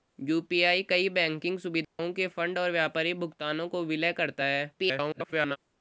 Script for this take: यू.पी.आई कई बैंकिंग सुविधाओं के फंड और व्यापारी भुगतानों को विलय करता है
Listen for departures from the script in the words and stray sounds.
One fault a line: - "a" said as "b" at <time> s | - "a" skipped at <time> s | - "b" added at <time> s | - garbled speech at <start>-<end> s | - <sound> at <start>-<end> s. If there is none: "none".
- dropout at 1.8-2.0 s
- garbled speech at 4.8-5.6 s